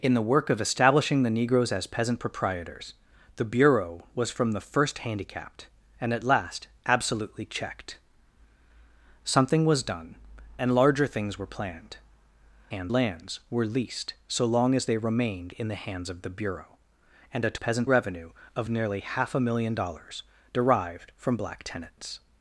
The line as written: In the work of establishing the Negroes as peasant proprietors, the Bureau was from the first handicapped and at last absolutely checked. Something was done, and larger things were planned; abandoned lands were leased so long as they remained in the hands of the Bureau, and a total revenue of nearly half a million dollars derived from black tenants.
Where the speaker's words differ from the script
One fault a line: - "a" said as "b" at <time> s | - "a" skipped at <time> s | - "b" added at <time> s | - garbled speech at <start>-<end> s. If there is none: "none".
- "abandoned" said as "hands" at 12.7 s
- "total" said as "peasant" at 17.5 s